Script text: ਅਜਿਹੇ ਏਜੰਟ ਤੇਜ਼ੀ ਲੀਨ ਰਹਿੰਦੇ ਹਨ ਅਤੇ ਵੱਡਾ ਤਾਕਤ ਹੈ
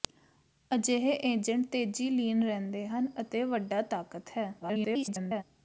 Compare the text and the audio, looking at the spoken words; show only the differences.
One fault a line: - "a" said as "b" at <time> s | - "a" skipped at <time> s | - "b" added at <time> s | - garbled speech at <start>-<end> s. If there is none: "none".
- garbled speech at 4.6-5.4 s